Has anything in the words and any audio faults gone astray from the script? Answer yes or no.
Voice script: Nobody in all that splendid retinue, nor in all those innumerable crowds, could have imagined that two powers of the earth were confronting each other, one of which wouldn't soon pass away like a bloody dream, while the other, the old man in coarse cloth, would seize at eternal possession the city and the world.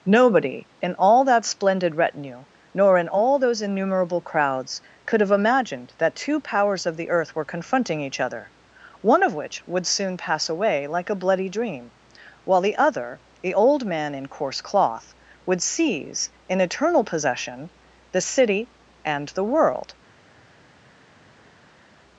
yes